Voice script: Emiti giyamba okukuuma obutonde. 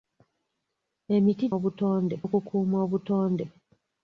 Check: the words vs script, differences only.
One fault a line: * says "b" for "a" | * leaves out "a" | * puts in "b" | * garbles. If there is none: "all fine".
* says "obutonde" for "giyamba"